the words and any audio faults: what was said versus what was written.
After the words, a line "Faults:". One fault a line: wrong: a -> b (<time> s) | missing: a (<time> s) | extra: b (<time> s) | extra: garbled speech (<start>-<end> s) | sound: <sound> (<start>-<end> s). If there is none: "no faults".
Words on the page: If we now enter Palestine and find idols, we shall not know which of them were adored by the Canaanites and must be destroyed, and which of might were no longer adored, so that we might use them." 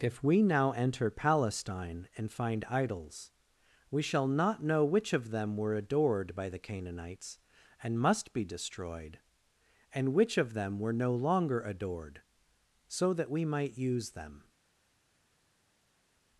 If we now enter Palestine and find idols, we shall not know which of them were adored by the Canaanites and must be destroyed, and which of them were no longer adored, so that we might use them."
Faults:
wrong: might -> them (10.6 s)